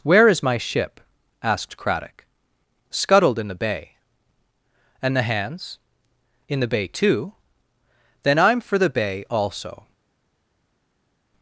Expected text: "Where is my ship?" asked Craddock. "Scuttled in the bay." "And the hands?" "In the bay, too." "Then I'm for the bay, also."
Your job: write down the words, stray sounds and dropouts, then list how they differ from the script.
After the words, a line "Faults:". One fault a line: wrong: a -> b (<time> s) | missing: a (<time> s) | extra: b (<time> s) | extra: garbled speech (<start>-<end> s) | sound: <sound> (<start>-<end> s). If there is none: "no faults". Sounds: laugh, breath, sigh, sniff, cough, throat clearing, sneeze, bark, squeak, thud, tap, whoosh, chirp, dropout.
"Where is my ship?" asked Craddock. "Scuttled in the bay." "And the hands?" "In the bay, too." "Then I'm for the bay, also."
Faults:
no faults